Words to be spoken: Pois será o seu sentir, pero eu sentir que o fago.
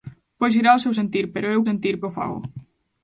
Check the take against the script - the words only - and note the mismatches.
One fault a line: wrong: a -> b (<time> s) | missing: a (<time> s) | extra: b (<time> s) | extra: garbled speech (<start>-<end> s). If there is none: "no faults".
no faults